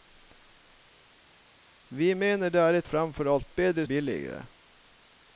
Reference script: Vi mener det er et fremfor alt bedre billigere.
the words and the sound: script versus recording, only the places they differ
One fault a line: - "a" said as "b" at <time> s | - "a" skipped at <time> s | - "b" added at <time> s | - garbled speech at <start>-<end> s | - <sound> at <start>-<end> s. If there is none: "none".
none